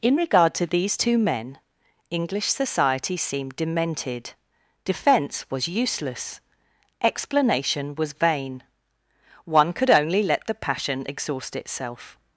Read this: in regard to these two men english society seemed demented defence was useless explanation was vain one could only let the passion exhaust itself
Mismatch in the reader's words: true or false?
false